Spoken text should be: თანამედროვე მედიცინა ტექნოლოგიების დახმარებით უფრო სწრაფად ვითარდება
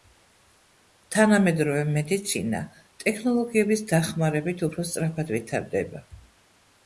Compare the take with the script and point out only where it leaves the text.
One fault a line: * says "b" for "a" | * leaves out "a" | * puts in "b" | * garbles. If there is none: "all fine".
all fine